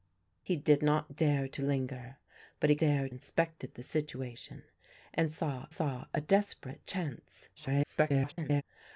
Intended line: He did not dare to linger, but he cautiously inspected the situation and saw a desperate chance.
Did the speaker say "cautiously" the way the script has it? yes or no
no